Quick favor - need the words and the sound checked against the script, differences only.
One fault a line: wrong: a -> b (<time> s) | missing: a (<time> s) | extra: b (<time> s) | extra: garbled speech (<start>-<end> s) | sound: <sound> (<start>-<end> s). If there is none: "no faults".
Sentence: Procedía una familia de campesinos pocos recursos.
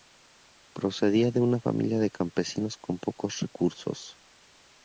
extra: de (1.3 s)
extra: con (2.8 s)